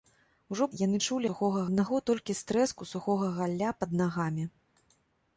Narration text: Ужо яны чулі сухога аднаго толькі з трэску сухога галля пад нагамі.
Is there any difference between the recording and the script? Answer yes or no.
no